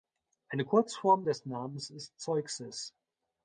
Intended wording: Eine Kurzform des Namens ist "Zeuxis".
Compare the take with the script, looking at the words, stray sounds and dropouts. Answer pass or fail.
pass